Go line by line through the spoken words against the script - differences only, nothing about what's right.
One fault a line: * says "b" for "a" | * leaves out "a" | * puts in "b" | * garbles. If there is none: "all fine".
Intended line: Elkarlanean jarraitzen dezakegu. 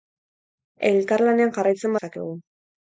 all fine